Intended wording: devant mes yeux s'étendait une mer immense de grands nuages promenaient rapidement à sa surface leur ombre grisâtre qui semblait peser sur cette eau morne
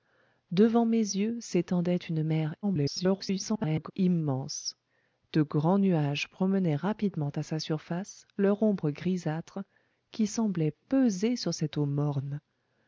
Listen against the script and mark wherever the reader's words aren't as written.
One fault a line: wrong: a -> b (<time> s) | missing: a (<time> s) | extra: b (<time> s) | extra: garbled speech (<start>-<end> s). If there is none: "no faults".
extra: garbled speech (2.6-3.9 s)